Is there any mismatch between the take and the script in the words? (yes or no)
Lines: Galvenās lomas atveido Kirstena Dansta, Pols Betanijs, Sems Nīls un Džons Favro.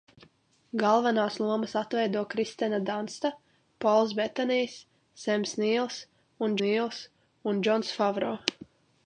yes